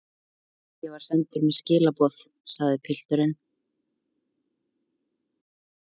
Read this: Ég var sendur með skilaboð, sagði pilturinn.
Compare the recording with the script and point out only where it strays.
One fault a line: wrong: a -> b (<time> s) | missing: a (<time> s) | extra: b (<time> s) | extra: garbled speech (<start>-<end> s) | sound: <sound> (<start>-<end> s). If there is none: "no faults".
no faults